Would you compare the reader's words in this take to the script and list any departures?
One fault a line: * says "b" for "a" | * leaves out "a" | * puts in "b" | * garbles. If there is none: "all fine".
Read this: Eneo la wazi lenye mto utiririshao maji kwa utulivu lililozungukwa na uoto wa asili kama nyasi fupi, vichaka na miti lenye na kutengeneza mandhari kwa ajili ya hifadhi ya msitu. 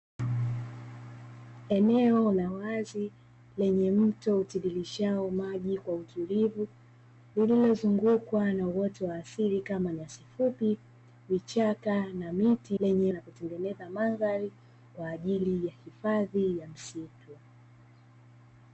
all fine